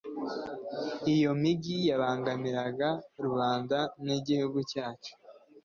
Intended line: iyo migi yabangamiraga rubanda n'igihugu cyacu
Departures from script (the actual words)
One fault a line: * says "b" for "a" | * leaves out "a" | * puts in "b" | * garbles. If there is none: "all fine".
all fine